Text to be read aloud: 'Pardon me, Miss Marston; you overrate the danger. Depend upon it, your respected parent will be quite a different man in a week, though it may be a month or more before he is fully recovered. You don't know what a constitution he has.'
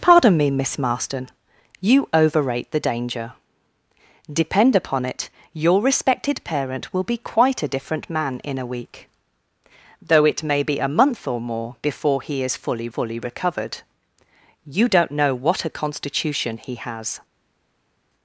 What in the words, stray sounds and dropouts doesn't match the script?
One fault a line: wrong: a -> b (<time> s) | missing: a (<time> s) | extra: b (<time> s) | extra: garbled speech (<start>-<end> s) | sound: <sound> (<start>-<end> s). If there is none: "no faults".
extra: fully (12.9 s)